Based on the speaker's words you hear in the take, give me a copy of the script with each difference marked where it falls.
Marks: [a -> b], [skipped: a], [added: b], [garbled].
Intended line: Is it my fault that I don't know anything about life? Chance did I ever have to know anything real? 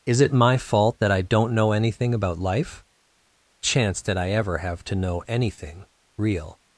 Is it my fault that I don't know anything about life? Chance did I ever have to know anything real?